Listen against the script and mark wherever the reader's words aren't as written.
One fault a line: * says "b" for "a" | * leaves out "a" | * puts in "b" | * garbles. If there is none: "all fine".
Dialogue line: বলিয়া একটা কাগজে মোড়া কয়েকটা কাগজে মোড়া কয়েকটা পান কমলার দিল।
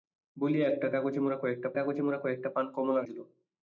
all fine